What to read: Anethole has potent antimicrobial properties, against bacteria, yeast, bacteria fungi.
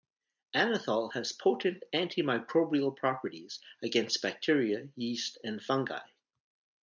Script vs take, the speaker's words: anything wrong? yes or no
yes